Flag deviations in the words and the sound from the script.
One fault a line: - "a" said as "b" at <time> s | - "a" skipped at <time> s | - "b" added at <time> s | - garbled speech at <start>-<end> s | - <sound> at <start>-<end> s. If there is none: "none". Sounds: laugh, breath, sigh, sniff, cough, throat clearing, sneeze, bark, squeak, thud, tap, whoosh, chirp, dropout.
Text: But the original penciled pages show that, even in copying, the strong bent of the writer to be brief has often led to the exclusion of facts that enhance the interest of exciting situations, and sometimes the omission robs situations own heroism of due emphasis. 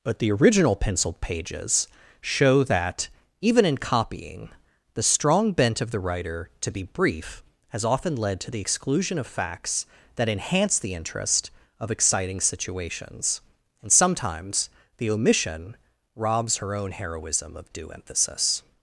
- "situations" said as "her" at 16.6 s